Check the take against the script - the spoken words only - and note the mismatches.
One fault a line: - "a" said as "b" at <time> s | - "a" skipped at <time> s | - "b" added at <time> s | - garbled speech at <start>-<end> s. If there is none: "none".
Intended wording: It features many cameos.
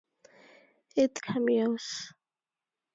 - "features many" skipped at 1.2 s